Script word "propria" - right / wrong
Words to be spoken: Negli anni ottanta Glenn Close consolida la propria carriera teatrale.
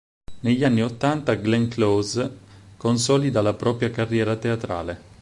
right